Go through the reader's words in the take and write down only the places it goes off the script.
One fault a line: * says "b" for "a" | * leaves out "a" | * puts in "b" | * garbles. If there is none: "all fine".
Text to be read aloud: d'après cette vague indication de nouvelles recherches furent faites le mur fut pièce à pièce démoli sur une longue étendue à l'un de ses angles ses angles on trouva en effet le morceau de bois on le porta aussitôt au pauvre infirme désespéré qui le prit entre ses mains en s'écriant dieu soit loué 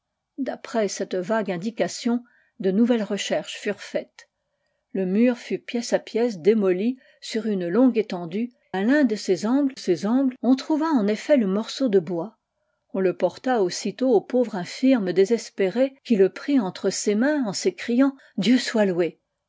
all fine